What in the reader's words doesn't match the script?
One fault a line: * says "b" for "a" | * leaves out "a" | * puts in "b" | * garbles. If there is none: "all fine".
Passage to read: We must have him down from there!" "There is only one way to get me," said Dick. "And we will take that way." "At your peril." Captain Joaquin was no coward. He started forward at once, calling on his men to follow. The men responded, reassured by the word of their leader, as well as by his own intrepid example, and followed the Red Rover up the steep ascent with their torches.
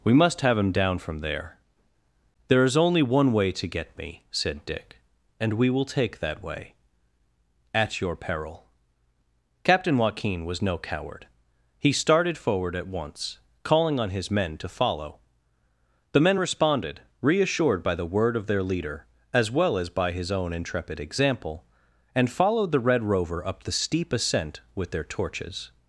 all fine